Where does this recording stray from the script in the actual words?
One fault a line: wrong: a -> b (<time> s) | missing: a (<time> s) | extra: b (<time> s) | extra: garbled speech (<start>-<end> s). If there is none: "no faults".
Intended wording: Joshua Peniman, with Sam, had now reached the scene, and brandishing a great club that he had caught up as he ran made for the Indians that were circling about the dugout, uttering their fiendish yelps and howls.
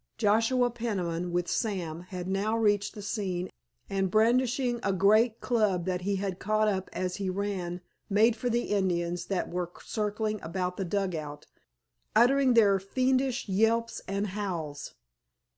no faults